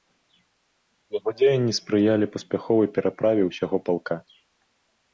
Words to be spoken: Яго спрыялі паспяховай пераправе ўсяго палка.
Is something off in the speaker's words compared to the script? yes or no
yes